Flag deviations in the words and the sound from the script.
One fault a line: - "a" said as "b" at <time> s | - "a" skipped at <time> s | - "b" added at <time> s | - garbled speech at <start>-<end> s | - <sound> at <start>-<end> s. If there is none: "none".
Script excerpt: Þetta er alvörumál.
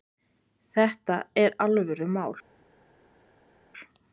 none